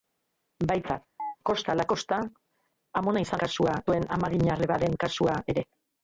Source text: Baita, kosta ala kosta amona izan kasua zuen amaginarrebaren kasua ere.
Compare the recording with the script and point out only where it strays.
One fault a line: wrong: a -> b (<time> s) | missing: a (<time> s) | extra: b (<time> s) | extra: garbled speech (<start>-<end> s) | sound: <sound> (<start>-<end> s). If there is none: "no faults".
sound: chirp (1.2-1.4 s)